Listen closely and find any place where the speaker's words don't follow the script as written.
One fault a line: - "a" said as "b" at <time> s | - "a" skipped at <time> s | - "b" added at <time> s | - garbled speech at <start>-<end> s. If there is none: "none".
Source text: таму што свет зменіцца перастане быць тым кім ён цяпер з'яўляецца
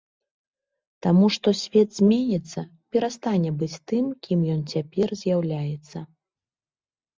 none